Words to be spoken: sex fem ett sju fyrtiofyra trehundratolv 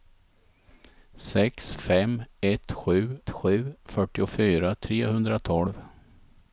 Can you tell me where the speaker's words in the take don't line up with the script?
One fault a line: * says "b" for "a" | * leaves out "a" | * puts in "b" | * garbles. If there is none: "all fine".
* puts in "sju"